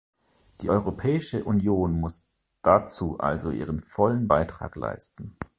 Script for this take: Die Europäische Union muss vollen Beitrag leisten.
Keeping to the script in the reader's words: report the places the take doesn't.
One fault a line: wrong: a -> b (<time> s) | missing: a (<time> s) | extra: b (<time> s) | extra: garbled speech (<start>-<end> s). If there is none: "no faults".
extra: dazu also ihren (2.6 s)